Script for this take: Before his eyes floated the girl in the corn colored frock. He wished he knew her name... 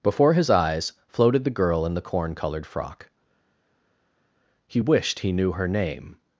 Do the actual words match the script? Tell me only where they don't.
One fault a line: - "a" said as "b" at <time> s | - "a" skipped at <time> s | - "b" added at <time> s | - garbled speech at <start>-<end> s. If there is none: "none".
none